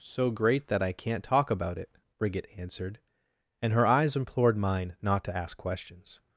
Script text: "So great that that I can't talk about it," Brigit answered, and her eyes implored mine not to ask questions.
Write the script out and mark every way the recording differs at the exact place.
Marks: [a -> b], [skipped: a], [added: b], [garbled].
"So great that [skipped: that] I can't talk about it," Brigit answered, and her eyes implored mine not to ask questions.